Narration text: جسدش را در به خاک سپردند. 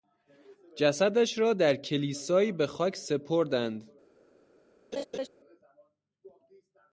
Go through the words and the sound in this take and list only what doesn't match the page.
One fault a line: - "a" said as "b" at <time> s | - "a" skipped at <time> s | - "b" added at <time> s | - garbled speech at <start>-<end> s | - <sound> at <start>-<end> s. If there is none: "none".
- "کلیسایی" added at 1.8 s
- laugh at 4.9-5.3 s